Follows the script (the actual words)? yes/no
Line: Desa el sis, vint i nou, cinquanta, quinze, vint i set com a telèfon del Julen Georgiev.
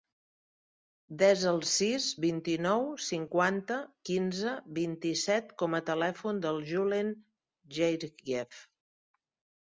yes